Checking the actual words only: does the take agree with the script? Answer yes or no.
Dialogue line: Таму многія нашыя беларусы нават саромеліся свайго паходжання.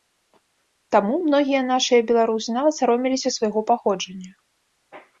yes